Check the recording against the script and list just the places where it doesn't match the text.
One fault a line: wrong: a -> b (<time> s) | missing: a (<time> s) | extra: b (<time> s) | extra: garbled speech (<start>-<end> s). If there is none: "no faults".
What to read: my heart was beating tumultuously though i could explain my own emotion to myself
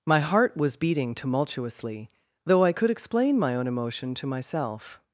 no faults